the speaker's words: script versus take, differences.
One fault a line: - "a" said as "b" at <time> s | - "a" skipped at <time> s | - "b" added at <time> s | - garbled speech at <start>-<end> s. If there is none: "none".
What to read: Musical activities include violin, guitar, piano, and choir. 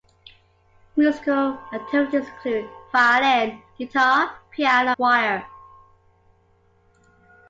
- "and" skipped at 4.9 s